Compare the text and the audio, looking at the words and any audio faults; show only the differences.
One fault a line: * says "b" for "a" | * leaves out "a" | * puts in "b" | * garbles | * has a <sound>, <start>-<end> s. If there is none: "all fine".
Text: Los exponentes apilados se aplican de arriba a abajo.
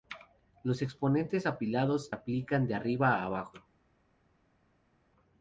* leaves out "se"